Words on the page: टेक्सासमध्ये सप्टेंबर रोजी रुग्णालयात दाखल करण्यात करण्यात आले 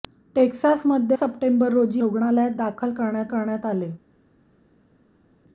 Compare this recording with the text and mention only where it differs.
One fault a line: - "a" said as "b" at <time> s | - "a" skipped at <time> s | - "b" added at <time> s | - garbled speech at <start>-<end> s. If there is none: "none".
none